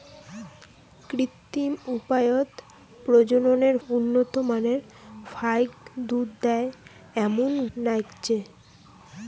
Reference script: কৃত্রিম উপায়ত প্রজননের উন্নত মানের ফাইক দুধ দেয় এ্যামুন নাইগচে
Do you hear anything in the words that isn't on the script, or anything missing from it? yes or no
no